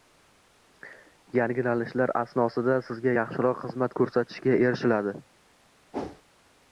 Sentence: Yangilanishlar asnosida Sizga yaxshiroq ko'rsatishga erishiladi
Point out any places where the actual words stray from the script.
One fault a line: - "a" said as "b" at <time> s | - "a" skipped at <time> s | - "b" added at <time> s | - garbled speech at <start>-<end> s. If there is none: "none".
- "xizmat" added at 3.7 s